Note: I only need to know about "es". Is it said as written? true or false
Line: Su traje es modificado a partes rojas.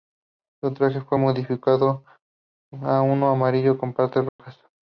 false